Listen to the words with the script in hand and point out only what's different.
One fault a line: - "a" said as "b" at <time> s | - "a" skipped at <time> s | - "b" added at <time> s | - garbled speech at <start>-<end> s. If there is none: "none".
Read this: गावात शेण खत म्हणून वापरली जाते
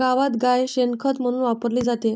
- "गाय" added at 0.4 s